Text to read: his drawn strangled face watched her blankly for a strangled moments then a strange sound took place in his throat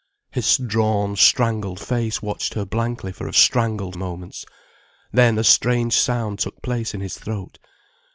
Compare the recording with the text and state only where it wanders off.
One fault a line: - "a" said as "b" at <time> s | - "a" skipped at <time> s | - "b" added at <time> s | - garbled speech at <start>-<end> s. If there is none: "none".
none